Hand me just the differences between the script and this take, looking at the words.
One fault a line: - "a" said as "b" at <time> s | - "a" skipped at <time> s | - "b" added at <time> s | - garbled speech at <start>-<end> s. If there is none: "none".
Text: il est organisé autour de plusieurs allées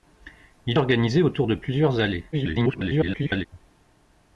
- "est" skipped at 0.8 s
- garbled speech at 2.3-3.5 s